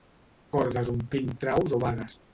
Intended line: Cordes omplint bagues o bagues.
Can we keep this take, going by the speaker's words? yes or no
no